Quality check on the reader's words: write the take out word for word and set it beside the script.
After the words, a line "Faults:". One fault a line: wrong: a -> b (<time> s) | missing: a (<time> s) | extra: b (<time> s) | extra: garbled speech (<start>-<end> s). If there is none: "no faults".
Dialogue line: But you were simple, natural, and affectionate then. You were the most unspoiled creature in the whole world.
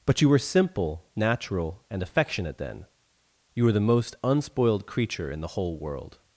But you were simple, natural, and affectionate then. You were the most unspoiled creature in the whole world.
Faults:
no faults